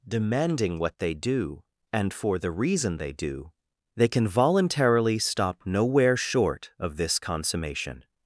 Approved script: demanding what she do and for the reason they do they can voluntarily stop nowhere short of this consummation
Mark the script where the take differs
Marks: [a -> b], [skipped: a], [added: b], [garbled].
demanding what [she -> they] do and for the reason they do they can voluntarily stop nowhere short of this consummation